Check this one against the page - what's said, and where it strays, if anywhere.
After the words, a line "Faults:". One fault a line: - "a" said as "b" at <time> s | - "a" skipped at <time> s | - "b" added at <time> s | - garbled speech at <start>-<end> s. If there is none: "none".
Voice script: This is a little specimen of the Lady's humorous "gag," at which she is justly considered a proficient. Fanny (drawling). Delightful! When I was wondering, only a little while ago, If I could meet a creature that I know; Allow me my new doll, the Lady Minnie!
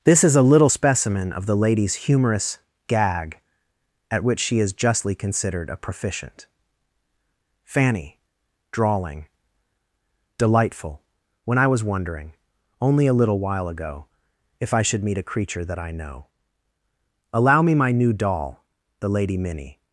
This is a little specimen of the Lady's humorous "gag," at which she is justly considered a proficient. Fanny (drawling). Delightful! When I was wondering, only a little while ago, If I should meet a creature that I know; Allow me my new doll, the Lady Minnie!
Faults:
- "could" said as "should" at 14.8 s